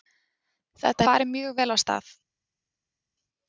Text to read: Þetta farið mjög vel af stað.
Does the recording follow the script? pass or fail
pass